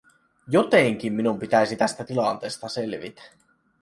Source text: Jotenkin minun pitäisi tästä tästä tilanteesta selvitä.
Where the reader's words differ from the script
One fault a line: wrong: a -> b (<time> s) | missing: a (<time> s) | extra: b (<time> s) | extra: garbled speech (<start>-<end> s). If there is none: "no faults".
missing: tästä (2.0 s)